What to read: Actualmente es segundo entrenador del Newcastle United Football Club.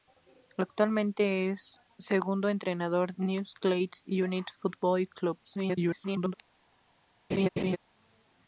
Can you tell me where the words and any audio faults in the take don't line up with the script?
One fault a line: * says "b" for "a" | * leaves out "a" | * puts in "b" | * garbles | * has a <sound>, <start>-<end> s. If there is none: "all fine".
* leaves out "del"
* garbles
* has a laugh, 7.3-7.8 s